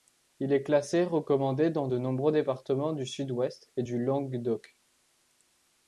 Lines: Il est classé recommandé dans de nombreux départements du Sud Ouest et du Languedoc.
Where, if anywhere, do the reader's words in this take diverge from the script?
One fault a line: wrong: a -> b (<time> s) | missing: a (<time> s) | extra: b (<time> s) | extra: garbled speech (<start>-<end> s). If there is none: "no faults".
no faults